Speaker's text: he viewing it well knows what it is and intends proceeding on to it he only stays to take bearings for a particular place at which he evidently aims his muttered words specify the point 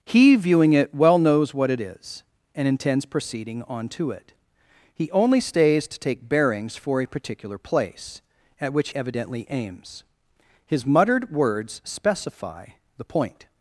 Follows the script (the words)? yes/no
no